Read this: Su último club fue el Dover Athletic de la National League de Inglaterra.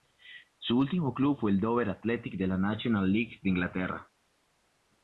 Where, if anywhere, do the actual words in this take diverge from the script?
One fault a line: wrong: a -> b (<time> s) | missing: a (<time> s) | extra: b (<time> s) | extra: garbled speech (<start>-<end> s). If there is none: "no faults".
no faults